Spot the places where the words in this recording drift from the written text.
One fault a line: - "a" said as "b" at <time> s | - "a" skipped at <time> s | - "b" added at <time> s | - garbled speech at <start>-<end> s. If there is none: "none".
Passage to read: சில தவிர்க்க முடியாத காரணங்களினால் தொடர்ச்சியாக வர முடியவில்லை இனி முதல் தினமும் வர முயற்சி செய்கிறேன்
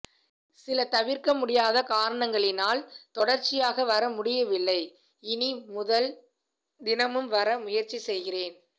none